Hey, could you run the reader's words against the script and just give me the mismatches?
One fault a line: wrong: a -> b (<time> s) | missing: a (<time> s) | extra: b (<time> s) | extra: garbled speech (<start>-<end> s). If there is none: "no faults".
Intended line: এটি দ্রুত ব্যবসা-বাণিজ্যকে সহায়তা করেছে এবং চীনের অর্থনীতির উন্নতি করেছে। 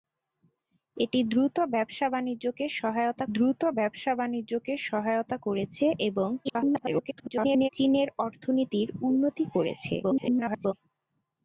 extra: দ্রুত ব্যবসা-বাণিজ্যকে সহায়তা (3.3 s)
extra: garbled speech (6.4-7.7 s)
extra: garbled speech (10.0-10.7 s)